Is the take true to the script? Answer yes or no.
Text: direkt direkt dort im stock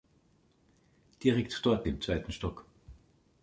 no